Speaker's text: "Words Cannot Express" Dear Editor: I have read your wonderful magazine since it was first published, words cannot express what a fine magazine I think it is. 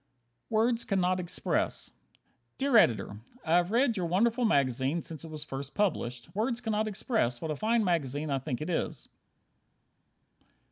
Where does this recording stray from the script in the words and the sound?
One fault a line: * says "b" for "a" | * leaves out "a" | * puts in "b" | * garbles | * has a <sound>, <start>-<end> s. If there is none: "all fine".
all fine